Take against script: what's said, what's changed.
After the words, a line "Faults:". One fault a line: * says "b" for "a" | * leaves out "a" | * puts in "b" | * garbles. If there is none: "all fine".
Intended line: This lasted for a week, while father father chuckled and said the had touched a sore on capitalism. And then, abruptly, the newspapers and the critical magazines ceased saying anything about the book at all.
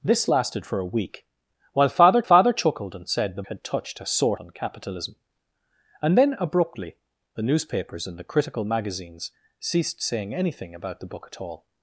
This lasted for a week, while father father chuckled and said the had touched a sore on capitalism. And then, abruptly, the newspapers and the critical magazines ceased saying anything about the book at all.
Faults:
all fine